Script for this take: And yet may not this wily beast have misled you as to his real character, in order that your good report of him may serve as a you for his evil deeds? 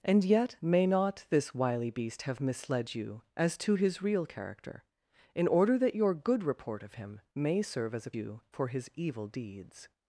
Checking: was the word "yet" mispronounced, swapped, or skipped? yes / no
no